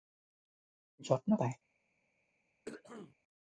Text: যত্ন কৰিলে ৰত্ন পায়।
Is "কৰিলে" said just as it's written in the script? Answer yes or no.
no